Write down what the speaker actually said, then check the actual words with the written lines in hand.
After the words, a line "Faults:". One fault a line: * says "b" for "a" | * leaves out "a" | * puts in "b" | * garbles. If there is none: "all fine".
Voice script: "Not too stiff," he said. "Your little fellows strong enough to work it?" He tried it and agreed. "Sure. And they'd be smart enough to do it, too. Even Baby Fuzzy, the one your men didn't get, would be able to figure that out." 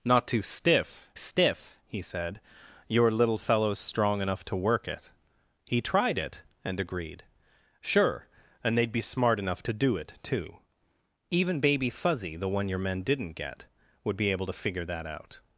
"Not too stiff stiff," he said. "Your little fellows strong enough to work it?" He tried it and agreed. "Sure. And they'd be smart enough to do it, too. Even Baby Fuzzy, the one your men didn't get, would be able to figure that out."
Faults:
* puts in "stiff"